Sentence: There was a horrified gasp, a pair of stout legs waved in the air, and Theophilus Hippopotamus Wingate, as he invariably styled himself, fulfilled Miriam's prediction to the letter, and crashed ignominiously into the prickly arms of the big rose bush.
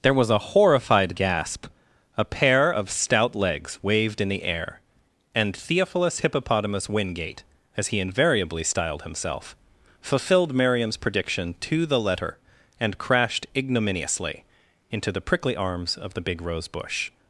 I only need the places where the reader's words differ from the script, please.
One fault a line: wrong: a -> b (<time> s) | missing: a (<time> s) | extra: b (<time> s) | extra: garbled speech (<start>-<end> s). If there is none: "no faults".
no faults